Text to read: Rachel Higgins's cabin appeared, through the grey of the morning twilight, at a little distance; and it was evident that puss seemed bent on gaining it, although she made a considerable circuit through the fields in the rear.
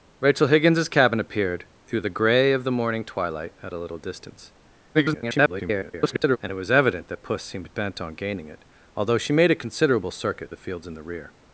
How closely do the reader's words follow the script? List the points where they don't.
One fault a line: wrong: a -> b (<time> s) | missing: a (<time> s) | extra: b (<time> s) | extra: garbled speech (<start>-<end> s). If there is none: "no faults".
extra: garbled speech (4.9-6.4 s)
missing: through (10.5 s)